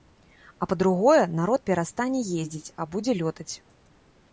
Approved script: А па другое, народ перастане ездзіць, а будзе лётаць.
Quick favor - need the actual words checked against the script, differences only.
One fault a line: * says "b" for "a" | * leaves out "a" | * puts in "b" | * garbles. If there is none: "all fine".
all fine